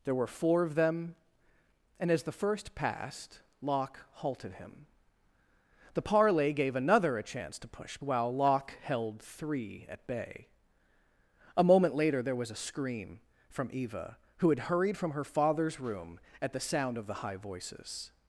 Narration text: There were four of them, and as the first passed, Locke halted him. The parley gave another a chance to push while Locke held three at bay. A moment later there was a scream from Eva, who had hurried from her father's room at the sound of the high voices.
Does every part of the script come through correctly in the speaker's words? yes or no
yes